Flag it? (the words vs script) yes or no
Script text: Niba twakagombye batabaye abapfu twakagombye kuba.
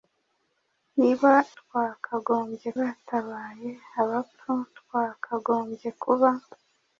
no